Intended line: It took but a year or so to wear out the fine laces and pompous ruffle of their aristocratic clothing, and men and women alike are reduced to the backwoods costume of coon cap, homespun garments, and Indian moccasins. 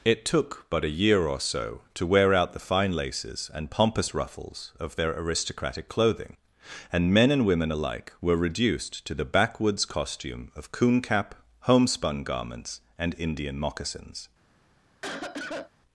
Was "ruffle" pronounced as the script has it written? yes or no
no